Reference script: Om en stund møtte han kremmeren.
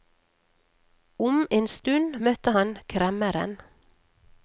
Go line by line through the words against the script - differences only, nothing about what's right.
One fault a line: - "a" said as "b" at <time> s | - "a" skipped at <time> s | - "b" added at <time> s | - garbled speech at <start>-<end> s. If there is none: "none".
none